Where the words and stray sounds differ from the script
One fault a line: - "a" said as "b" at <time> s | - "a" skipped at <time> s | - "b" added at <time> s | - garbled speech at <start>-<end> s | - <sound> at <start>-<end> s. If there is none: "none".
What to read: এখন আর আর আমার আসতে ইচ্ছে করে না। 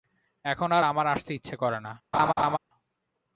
- "আর" skipped at 0.8 s
- laugh at 2.1-2.6 s